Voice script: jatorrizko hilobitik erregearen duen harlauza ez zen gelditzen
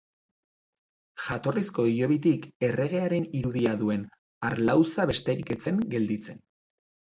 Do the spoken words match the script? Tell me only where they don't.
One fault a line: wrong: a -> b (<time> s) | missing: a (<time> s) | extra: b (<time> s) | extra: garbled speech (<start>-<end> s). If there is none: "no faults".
extra: irudia (3.4 s)
extra: besterik (5.2 s)